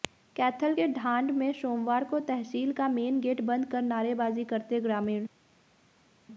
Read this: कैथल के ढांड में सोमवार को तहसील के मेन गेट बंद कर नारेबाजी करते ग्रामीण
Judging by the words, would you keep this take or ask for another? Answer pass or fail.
fail